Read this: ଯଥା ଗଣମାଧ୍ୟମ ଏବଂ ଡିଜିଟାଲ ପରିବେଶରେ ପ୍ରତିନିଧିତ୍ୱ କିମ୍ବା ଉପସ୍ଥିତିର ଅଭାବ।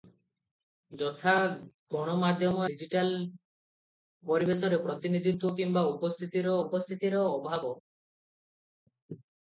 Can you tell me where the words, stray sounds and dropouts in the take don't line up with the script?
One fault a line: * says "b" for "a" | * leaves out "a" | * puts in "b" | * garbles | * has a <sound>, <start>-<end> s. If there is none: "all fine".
* leaves out "ଏବଂ"
* puts in "ଉପସ୍ଥିତିର"